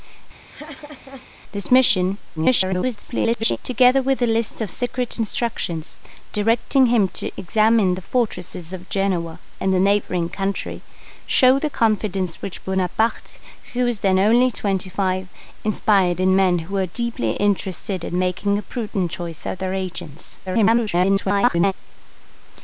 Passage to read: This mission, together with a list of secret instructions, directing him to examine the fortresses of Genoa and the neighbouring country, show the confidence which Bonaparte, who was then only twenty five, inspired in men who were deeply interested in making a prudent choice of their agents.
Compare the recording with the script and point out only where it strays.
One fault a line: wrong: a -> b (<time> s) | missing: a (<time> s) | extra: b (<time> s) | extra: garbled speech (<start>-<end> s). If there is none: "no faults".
extra: garbled speech (2.4-3.6 s)
extra: garbled speech (20.5-21.7 s)